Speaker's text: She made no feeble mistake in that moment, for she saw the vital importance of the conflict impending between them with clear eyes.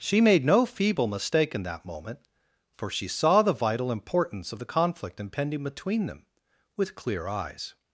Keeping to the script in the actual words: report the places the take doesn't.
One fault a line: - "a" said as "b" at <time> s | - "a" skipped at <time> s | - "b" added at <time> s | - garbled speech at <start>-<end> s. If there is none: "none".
none